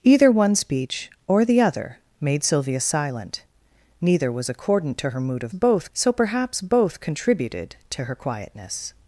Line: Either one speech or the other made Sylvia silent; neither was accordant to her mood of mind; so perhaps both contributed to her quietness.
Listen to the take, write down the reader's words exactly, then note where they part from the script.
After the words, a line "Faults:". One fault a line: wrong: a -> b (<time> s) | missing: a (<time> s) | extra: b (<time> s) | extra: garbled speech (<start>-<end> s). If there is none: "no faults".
Either one speech or the other made Sylvia silent; neither was accordant to her mood of both; so perhaps both contributed to her quietness.
Faults:
wrong: mind -> both (5.5 s)